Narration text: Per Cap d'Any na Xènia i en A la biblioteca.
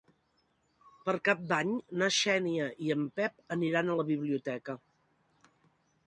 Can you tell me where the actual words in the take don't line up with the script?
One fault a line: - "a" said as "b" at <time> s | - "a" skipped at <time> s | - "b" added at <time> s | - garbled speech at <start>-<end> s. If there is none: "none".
- "Pep aniran" added at 3.2 s